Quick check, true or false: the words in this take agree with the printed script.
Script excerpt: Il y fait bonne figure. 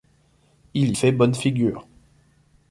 true